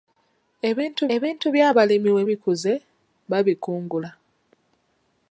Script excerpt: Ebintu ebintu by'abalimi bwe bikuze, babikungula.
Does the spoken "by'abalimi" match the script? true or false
true